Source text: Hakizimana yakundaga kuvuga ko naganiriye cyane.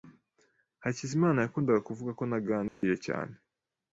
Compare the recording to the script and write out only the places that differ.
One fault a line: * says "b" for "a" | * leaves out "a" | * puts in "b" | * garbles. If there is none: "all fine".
all fine